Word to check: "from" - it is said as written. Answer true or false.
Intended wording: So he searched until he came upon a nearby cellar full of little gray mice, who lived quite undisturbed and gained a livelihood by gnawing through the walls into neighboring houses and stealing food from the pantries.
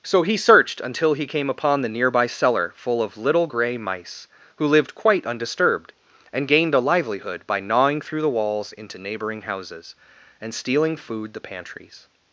false